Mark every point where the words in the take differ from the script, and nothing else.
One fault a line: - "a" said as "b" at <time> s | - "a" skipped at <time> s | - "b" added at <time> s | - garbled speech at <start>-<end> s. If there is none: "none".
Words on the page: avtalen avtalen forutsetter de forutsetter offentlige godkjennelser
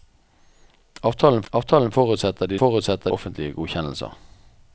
none